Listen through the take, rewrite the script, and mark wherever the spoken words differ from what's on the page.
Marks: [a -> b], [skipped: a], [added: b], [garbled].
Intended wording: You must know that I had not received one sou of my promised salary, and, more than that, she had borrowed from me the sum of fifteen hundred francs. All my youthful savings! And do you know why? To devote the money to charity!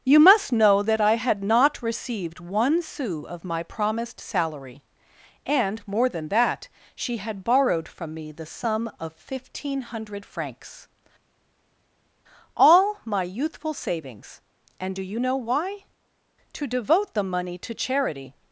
You must know that I had not received one sou of my promised salary, and, more than that, she had borrowed from me the sum of fifteen hundred francs. All my youthful savings! And do you know why? To devote the money to charity!